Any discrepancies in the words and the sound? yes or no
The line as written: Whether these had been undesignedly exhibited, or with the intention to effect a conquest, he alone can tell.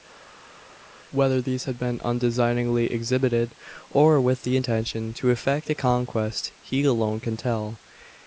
no